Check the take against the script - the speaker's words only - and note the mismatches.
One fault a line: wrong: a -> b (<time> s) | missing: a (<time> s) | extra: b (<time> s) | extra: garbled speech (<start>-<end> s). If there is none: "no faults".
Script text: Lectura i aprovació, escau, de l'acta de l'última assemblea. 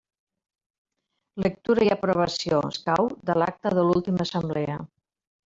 no faults